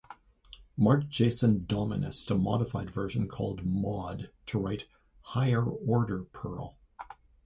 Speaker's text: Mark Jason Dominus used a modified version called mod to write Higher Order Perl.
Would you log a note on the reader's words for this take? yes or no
yes